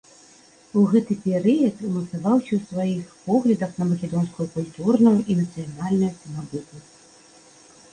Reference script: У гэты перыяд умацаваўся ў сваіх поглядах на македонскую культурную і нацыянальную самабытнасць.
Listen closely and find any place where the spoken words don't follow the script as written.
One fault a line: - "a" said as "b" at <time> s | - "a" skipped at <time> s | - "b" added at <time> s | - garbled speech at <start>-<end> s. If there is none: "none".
none